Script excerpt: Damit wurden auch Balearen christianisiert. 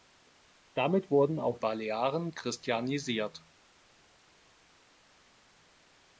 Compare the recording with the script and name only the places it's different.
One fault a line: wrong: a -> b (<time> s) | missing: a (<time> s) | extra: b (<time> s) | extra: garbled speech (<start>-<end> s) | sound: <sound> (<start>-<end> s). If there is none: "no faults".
no faults